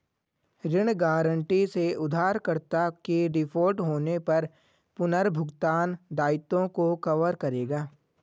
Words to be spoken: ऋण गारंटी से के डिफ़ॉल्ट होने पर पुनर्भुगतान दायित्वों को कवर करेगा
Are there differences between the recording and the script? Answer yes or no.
yes